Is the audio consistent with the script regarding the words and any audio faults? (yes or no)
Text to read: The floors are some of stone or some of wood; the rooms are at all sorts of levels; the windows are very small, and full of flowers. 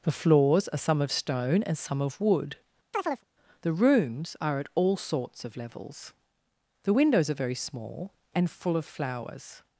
no